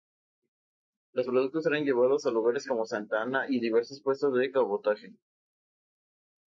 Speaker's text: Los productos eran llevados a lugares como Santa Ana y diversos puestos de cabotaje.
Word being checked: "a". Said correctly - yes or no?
yes